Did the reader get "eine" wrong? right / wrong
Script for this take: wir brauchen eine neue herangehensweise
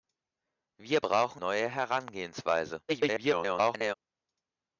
wrong